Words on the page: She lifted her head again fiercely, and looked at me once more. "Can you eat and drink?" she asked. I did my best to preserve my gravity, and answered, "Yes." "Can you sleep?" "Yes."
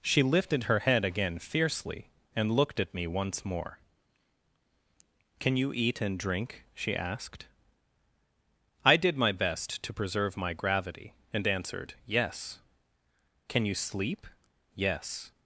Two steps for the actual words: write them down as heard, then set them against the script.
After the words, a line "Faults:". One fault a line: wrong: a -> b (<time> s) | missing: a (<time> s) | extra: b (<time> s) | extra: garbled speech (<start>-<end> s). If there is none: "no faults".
She lifted her head again fiercely, and looked at me once more. "Can you eat and drink?" she asked. I did my best to preserve my gravity, and answered, "Yes." "Can you sleep?" "Yes."
Faults:
no faults